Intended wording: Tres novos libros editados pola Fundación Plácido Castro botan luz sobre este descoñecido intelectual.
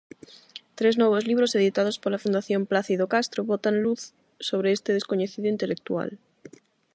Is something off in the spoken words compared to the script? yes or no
no